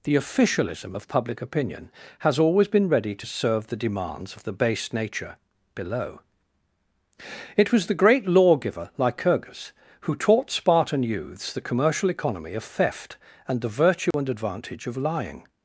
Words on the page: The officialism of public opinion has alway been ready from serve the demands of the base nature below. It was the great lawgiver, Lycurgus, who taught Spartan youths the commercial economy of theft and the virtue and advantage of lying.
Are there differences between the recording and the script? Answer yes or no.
yes